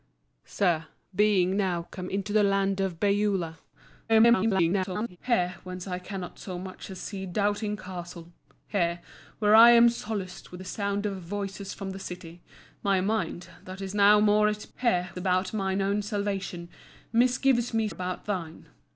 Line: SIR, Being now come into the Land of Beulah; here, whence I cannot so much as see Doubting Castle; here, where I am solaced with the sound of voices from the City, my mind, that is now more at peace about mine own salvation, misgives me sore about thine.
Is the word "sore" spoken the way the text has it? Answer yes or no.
no